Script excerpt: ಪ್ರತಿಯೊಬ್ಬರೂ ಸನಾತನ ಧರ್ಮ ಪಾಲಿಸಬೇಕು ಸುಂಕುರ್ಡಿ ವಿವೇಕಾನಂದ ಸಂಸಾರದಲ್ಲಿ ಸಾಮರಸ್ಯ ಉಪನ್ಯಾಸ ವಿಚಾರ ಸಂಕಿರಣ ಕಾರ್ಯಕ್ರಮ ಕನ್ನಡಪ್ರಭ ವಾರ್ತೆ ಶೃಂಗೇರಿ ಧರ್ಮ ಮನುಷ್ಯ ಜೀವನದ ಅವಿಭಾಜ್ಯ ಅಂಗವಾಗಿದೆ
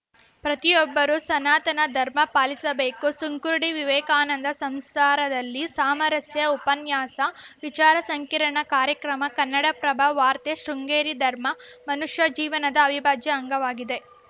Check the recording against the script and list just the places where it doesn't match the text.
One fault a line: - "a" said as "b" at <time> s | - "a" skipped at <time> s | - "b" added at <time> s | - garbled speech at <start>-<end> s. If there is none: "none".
none